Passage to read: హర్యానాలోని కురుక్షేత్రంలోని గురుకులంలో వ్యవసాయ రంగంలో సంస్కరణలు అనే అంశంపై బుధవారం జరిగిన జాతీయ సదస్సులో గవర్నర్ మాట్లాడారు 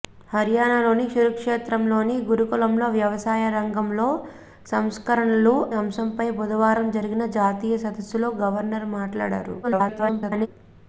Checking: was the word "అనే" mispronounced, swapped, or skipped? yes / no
yes